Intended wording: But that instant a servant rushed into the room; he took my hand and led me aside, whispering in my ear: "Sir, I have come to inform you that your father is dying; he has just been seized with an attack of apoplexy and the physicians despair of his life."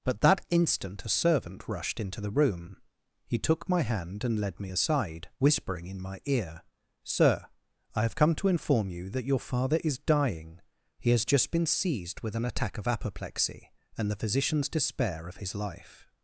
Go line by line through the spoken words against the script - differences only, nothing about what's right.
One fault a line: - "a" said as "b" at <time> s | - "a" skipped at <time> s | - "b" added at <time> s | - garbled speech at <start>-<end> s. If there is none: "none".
none